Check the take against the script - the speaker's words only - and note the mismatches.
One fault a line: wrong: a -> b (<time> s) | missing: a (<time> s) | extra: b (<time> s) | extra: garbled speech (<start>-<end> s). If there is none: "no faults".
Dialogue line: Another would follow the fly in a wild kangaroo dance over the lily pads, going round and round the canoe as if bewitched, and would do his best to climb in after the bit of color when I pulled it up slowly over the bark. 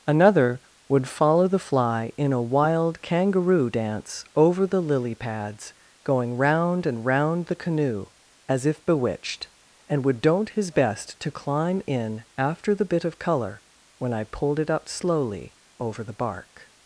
wrong: do -> don't (10.2 s)